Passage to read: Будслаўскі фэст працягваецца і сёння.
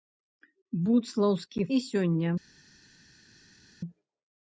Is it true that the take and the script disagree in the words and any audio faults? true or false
true